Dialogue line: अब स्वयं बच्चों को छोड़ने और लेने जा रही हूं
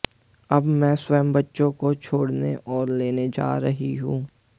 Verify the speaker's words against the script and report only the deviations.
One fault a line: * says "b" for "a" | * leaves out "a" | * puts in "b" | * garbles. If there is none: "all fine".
* puts in "मैं"